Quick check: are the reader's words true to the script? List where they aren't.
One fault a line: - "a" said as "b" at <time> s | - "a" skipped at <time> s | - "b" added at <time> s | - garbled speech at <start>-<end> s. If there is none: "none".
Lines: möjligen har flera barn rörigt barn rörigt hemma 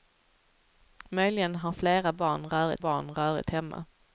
none